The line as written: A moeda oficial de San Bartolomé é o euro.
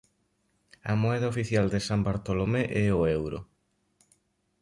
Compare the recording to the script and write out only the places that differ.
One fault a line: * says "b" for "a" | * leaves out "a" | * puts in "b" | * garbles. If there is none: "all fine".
all fine